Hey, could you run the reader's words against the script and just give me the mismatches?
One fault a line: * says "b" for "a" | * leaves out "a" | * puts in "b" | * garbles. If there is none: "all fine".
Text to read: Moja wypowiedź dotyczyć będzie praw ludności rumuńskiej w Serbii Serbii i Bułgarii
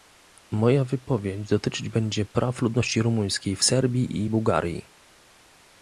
* leaves out "Serbii"